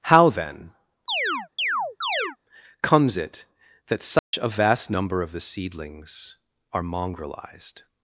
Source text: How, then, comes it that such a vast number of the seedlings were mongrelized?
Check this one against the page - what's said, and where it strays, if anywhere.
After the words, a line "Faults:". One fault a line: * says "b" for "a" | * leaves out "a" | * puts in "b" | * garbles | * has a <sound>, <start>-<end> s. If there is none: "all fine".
How, then, comes it that such a vast number of the seedlings are mongrelized?
Faults:
* has a chirp, 1.1-2.4 s
* has a dropout, 4.2-4.3 s
* says "are" for "were"